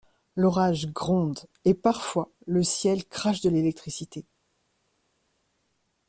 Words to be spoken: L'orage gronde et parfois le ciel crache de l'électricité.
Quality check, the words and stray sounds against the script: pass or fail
pass